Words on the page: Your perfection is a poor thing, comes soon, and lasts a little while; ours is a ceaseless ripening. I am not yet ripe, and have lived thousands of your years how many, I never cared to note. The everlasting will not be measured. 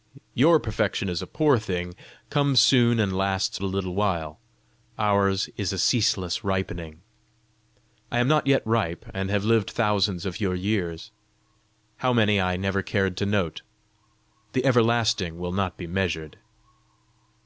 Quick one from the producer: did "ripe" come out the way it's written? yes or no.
yes